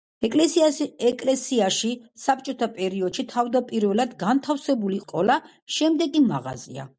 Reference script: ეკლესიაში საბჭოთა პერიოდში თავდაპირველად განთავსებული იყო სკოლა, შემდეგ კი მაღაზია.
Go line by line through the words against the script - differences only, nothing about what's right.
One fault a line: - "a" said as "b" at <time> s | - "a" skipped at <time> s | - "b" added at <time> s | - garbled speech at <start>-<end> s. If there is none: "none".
- "იყო" skipped at 5.0 s